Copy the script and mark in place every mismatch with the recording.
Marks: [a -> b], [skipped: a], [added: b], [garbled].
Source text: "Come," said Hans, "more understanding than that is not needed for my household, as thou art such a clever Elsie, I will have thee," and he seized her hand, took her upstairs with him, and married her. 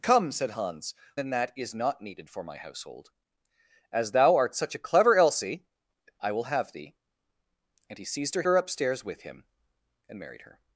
"Come," said Hans, [skipped: "more understanding] than that is not needed for my household, as thou art such a clever Elsie, I will have thee," and he seized her [skipped: hand, took] her upstairs with him, and married her.